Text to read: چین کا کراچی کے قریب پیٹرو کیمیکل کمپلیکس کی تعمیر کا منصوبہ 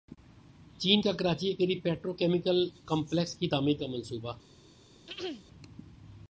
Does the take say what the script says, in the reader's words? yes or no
yes